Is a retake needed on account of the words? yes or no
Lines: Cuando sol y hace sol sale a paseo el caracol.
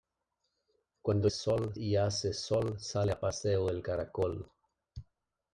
no